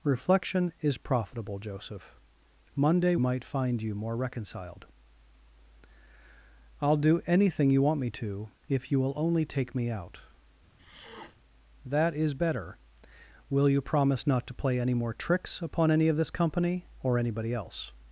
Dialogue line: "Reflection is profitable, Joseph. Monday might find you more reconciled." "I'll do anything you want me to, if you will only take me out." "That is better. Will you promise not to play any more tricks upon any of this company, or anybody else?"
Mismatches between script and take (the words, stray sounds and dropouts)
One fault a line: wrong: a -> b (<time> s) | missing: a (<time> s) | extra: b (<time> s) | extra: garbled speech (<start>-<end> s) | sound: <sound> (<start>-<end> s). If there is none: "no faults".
sound: sniff (10.8-11.4 s)